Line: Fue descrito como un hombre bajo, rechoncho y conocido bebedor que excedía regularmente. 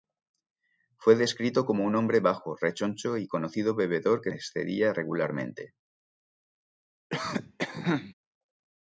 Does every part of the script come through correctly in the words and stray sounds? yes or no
no